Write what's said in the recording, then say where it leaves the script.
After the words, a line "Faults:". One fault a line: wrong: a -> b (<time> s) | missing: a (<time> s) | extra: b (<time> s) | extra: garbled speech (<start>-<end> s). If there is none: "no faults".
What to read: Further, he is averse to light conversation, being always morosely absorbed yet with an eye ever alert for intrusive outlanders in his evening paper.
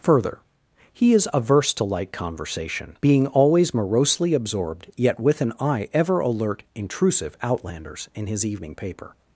Further, he is averse to light conversation, being always morosely absorbed yet with an eye ever alert intrusive outlanders in his evening paper.
Faults:
missing: for (6.6 s)